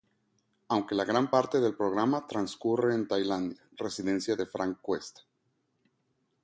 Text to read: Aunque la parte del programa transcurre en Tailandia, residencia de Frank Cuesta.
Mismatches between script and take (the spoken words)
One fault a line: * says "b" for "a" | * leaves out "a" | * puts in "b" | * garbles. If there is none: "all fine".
* puts in "gran"